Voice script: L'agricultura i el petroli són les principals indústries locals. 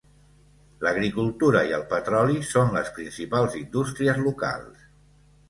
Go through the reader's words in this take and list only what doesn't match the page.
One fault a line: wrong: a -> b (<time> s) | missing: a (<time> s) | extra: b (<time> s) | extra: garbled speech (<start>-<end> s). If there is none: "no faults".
no faults